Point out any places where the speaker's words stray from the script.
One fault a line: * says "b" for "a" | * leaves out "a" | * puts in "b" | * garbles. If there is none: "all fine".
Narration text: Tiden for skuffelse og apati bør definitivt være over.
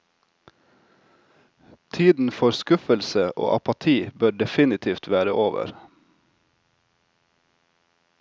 all fine